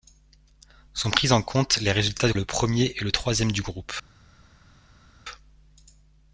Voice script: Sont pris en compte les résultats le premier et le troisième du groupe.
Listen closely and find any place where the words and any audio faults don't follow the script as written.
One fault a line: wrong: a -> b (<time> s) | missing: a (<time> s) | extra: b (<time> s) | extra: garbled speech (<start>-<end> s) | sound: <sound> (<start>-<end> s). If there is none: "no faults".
no faults